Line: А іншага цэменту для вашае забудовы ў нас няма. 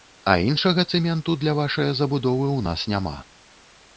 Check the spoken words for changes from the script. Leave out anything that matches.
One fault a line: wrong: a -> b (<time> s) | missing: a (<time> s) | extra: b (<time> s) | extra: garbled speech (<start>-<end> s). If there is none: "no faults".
no faults